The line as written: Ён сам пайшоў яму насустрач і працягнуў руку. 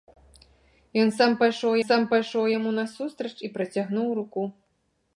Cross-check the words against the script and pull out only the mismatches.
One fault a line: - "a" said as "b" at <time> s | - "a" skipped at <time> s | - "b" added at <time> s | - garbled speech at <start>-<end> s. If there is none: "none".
- "сам пайшоў" added at 1.9 s